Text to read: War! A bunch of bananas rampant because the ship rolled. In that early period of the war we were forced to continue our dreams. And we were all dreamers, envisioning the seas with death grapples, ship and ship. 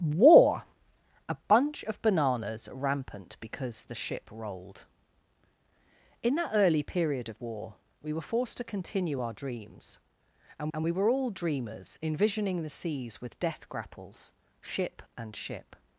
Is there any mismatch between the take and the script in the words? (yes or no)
yes